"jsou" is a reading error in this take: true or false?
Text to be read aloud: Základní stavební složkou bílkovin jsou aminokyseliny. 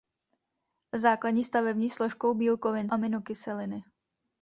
true